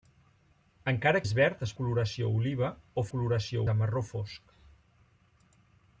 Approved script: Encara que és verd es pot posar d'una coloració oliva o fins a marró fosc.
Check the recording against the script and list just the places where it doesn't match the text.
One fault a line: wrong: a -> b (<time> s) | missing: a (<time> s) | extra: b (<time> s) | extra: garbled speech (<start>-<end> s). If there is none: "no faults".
missing: que (1.2 s)
missing: pot posar d'una (1.7 s)
wrong: fins -> coloració (3.1 s)